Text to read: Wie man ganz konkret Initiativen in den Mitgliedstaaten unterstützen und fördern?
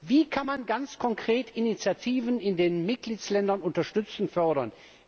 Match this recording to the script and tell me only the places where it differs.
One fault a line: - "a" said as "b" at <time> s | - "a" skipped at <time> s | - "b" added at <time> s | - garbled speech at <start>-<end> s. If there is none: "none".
- "kann" added at 0.3 s